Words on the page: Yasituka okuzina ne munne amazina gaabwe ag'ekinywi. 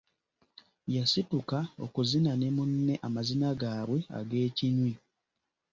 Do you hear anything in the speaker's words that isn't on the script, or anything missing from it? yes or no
no